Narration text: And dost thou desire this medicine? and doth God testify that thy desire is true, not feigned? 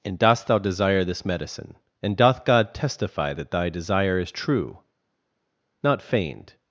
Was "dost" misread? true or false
false